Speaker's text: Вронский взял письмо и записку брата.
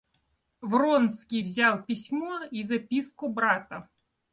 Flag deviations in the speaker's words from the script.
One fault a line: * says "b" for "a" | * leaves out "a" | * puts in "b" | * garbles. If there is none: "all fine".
all fine